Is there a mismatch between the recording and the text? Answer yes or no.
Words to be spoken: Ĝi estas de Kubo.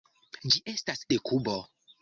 no